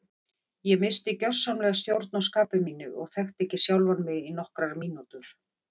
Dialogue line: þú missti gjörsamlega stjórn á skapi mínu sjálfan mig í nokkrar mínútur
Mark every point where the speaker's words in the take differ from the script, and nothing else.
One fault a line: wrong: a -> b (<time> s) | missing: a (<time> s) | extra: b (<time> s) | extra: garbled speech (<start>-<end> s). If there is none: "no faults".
wrong: þú -> ég (0.7 s)
extra: og þekkti ekki (3.0 s)